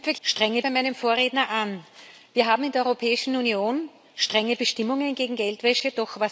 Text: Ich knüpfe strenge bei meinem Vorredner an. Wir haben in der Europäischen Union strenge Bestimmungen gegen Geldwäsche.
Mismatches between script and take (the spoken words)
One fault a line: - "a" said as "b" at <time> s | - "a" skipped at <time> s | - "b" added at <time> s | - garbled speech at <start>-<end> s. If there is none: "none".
none